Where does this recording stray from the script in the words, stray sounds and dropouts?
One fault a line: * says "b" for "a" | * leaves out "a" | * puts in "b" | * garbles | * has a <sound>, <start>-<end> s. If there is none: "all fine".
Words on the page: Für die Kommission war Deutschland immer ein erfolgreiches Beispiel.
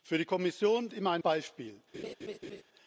* leaves out "war Deutschland"
* leaves out "erfolgreiches"
* has a laugh, 1.9-2.6 s